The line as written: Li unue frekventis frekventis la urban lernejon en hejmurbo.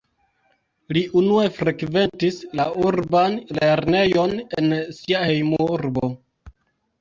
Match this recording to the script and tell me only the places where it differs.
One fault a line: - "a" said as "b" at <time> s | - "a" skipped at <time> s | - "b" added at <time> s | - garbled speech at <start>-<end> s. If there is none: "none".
- "frekventis" skipped at 2.4 s
- "sia" added at 5.0 s